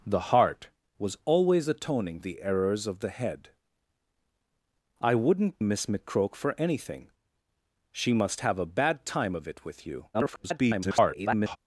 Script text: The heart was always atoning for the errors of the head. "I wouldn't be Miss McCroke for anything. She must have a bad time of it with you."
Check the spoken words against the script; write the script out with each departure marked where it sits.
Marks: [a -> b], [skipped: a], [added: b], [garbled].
The heart was always atoning [skipped: for] the errors of the head. "I wouldn't [skipped: be] Miss McCroke for anything. She must have a bad time of it with you." [garbled]